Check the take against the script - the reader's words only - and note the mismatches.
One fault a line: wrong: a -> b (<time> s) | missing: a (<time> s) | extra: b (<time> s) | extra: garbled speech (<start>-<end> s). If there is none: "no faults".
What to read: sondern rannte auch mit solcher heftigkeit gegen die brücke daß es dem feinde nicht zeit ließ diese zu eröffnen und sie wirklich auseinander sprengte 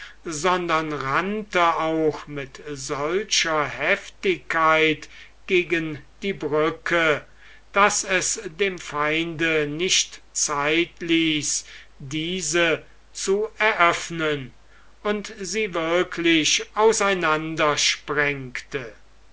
no faults